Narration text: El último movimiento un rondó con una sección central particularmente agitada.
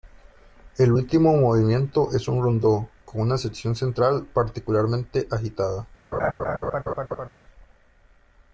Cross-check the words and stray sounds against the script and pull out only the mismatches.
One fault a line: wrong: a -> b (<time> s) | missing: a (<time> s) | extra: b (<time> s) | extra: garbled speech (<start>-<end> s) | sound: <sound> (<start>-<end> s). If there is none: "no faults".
extra: es (2.1 s)
sound: laugh (6.1-7.3 s)